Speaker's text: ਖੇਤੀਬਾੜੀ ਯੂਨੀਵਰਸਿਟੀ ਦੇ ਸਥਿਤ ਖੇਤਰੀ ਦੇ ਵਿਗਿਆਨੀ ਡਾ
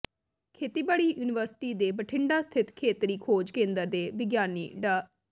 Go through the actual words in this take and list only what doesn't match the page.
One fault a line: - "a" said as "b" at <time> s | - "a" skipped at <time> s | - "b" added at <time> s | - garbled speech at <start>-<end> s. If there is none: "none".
- "ਬਠਿੰਡਾ" added at 1.9 s
- "ਖੋਜ ਕੇਂਦਰ" added at 3.2 s